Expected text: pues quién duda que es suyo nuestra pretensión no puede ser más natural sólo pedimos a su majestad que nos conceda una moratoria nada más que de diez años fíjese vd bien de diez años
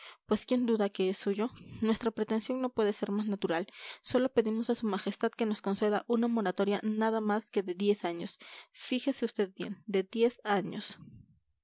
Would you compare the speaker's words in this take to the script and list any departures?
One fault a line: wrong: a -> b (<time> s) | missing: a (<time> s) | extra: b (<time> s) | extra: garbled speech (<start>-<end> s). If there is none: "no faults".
no faults